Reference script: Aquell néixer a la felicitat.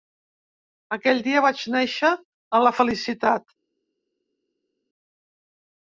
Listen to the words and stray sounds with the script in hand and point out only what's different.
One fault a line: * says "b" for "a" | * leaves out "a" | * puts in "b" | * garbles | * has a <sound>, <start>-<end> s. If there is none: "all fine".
* puts in "dia vaig"